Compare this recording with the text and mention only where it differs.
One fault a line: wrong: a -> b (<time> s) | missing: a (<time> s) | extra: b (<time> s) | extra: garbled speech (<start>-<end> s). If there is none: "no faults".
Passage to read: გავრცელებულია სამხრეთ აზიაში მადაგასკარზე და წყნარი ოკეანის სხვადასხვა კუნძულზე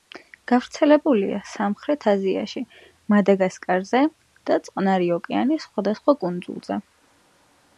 no faults